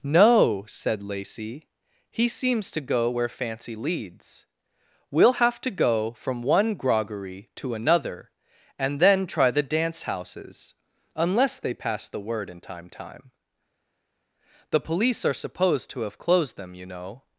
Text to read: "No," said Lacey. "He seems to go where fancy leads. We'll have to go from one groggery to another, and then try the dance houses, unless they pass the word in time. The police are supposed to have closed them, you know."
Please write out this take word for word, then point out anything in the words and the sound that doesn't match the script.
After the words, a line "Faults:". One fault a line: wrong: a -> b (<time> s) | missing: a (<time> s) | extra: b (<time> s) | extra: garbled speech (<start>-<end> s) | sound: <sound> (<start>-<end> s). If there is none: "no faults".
"No," said Lacey. "He seems to go where fancy leads. We'll have to go from one groggery to another, and then try the dance houses, unless they pass the word in time time. The police are supposed to have closed them, you know."
Faults:
extra: time (12.9 s)